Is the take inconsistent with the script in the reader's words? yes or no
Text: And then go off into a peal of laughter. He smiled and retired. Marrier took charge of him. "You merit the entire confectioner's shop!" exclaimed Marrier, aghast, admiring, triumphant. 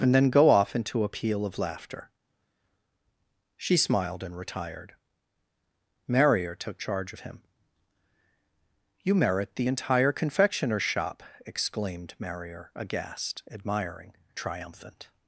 yes